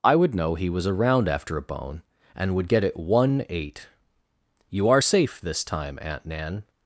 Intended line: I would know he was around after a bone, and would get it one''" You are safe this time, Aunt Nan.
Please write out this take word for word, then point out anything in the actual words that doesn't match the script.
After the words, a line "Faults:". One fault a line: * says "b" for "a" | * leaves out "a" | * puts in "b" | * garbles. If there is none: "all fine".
I would know he was around after a bone, and would get it one''" eight You are safe this time, Aunt Nan.
Faults:
* puts in "eight"